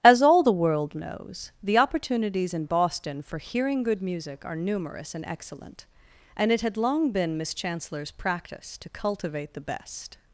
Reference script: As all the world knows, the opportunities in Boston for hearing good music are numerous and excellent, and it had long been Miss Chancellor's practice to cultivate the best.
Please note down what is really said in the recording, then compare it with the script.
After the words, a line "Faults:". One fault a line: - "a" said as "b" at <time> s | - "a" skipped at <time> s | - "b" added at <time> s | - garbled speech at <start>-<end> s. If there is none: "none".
As all the world knows, the opportunities in Boston for hearing good music are numerous and excellent, and it had long been Miss Chancellor's practice to cultivate the best.
Faults:
none